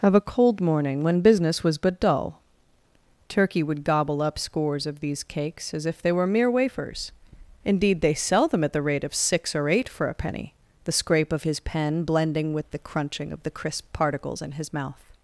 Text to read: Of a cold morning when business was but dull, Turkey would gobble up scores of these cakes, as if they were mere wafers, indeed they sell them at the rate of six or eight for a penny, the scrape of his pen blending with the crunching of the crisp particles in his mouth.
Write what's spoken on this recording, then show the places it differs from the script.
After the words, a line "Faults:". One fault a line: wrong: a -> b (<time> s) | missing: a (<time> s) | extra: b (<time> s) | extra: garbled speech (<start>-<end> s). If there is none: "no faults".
Of a cold morning when business was but dull, Turkey would gobble up scores of these cakes, as if they were mere wafers, indeed they sell them at the rate of six or eight for a penny, the scrape of his pen blending with the crunching of the crisp particles in his mouth.
Faults:
no faults